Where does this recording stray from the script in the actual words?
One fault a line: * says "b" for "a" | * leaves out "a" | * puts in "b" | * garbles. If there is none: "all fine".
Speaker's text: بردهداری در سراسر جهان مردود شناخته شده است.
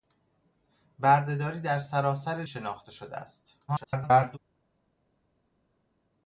* leaves out "جهان مردود"
* garbles